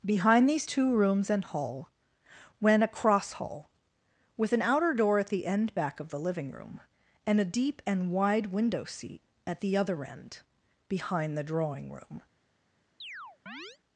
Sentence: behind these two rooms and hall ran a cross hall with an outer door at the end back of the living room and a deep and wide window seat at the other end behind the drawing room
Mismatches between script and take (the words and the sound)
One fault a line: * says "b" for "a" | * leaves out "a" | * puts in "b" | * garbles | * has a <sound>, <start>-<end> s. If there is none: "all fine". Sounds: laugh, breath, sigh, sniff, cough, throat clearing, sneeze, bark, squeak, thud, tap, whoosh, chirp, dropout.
* says "went" for "ran"
* has a chirp, 13.0-13.8 s